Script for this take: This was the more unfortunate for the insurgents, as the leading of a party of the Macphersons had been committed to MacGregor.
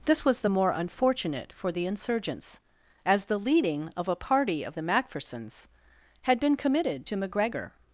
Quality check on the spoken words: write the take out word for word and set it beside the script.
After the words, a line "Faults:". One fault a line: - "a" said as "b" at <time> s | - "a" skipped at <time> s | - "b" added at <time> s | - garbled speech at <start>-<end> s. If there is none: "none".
This was the more unfortunate for the insurgents, as the leading of a party of the Macphersons had been committed to MacGregor.
Faults:
none